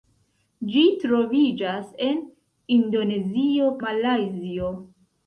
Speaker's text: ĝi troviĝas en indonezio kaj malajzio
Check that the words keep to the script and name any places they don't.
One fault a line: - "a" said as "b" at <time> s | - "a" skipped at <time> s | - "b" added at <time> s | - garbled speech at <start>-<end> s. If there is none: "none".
- "kaj" skipped at 3.8 s